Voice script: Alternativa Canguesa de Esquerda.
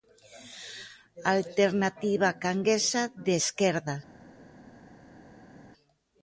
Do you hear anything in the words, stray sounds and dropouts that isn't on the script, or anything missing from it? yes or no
no